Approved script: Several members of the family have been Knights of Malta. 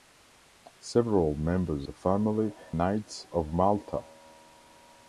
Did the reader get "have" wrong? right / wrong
wrong